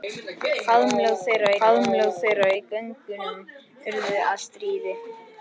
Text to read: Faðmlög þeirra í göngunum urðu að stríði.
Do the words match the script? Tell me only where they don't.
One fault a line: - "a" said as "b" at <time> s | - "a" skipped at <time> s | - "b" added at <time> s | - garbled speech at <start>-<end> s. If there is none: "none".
- "faðmlög þeirra" added at 1.6 s